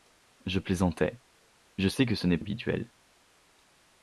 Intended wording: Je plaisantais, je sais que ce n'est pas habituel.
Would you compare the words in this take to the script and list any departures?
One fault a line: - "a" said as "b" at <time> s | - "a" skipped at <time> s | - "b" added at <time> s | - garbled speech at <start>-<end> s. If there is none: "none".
- "pas" skipped at 2.4 s